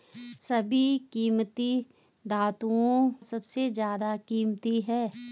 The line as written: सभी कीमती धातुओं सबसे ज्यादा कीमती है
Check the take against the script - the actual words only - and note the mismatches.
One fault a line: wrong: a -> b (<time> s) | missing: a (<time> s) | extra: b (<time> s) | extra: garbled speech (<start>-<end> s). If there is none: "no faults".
no faults